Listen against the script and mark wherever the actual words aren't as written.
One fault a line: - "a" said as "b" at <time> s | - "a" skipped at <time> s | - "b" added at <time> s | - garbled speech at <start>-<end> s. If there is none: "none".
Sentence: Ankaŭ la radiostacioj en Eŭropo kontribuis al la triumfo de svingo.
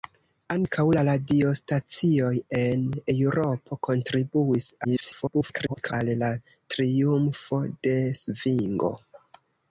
- garbled speech at 4.8-5.9 s